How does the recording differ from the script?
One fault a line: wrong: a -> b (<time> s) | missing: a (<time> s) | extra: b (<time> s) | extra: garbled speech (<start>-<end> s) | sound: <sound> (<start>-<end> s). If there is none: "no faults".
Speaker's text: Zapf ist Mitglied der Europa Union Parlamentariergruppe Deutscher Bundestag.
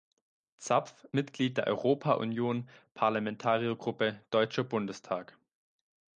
missing: ist (1.1 s)